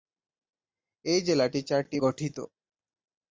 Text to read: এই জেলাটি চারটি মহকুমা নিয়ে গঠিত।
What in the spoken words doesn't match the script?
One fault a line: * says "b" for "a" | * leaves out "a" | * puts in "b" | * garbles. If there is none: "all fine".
* leaves out "মহকুমা নিয়ে"